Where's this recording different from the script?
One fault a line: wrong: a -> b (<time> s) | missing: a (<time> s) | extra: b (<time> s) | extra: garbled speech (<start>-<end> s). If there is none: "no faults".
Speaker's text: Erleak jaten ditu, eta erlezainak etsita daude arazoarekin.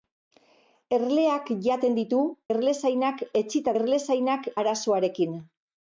missing: eta (2.2 s)
wrong: daude -> erlezainak (3.8 s)